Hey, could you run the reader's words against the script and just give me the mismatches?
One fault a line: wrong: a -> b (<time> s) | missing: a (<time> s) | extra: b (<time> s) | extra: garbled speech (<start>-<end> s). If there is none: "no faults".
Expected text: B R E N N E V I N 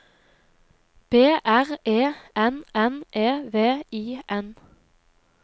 no faults